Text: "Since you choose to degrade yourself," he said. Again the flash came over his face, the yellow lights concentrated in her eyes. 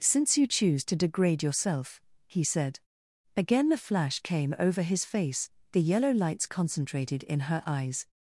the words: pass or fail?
pass